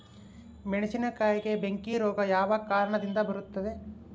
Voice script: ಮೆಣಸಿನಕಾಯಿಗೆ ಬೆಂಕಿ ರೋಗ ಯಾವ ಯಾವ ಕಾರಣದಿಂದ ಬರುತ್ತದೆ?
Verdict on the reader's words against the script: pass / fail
fail